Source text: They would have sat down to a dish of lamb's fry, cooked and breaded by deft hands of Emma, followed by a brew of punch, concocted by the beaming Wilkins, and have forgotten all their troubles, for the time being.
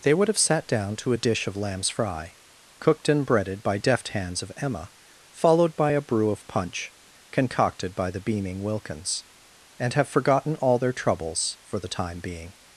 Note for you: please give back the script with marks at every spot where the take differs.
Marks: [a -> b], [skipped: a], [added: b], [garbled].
They would have sat down to a dish of lamb's fry, cooked and breaded by deft hands of Emma, followed by a brew of punch, concocted by the beaming Wilkins, and have forgotten all their troubles, for the time being.